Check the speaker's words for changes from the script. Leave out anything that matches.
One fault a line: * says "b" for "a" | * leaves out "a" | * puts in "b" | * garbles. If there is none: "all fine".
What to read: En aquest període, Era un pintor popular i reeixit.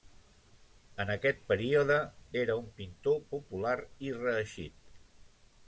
all fine